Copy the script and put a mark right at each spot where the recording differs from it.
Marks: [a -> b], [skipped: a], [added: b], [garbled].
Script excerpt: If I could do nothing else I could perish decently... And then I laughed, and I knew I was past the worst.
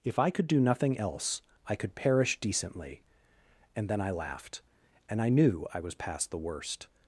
If I could do nothing else I could perish decently... And then I laughed, and I knew I was past the worst.